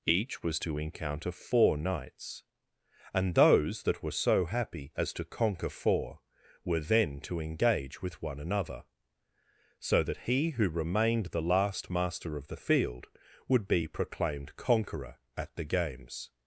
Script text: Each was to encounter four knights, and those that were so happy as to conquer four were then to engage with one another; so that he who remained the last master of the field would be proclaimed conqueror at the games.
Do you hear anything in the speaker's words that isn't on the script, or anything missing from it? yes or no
no